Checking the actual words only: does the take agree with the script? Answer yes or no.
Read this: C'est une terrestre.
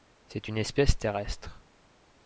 no